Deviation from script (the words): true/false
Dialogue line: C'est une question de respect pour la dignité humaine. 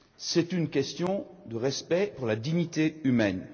false